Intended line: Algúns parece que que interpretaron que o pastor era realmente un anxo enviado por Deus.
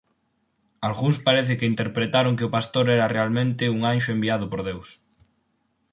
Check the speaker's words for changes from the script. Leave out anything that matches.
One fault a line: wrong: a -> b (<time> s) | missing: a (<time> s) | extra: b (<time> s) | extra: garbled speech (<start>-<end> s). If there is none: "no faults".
missing: que (1.7 s)